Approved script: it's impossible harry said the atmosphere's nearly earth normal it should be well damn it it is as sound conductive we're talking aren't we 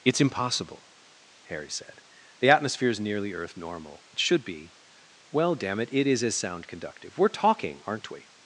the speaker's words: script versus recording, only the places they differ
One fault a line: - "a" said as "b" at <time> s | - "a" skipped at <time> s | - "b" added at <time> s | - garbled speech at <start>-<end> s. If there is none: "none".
none